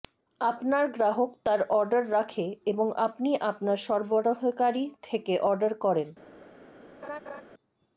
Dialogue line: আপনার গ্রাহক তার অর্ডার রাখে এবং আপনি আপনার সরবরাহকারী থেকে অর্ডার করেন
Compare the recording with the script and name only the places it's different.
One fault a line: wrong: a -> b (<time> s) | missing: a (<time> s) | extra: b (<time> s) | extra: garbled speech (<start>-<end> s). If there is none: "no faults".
no faults